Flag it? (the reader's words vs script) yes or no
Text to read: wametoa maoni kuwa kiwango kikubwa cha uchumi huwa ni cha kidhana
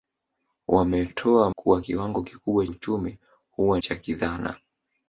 yes